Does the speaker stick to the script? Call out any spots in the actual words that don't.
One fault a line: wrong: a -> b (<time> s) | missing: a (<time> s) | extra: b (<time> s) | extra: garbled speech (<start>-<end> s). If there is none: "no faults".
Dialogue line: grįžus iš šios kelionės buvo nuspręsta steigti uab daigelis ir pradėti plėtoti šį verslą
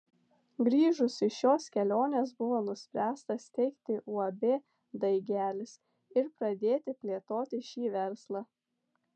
no faults